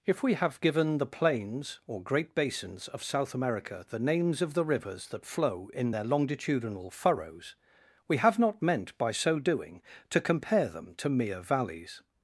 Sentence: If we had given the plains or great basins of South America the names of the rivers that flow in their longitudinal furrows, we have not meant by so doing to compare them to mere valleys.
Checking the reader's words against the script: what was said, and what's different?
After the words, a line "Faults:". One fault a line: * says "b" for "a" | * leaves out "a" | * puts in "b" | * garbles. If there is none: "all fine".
If we have given the plains or great basins of South America the names of the rivers that flow in their longitudinal furrows, we have not meant by so doing to compare them to mere valleys.
Faults:
* says "have" for "had"